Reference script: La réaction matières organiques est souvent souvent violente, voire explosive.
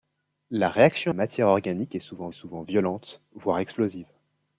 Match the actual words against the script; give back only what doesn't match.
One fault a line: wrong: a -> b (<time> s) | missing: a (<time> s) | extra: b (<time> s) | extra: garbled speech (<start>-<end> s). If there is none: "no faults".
no faults